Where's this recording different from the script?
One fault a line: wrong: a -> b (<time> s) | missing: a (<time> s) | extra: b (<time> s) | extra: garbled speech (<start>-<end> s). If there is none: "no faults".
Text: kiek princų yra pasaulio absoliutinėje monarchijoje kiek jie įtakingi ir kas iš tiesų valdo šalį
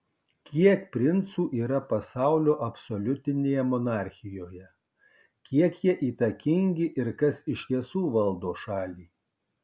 no faults